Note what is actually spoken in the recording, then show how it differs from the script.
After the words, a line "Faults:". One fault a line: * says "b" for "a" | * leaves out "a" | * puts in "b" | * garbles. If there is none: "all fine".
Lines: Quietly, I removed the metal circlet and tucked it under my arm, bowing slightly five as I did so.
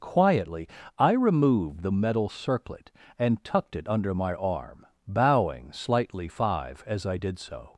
Quietly, I removed the metal circlet and tucked it under my arm, bowing slightly five as I did so.
Faults:
all fine